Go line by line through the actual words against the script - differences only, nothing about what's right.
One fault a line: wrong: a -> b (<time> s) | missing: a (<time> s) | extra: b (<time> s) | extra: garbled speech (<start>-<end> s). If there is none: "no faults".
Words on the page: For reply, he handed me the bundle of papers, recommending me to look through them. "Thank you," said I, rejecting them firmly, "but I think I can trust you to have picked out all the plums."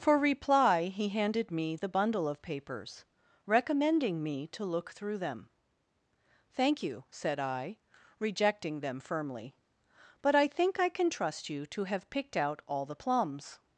no faults